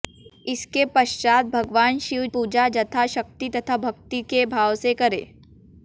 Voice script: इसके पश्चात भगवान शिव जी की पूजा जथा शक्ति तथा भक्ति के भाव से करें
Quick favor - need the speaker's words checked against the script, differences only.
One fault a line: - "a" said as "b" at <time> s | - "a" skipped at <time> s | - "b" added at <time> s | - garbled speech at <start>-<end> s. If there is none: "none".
- "जी की" skipped at 2.2 s